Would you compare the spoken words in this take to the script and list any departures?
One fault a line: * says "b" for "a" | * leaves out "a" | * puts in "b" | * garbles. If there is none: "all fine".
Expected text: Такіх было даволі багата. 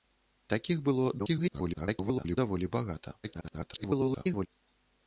* garbles
* garbles